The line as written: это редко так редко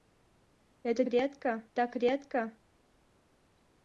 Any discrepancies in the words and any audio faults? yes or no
no